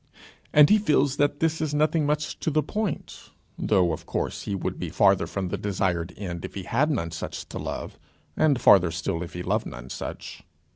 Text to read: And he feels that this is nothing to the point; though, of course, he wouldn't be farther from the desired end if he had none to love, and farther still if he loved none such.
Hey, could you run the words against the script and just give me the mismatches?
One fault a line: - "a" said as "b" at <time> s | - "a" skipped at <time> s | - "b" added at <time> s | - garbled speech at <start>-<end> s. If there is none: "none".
- "much" added at 2.1 s
- "wouldn't" said as "would" at 4.5 s
- "such" added at 7.1 s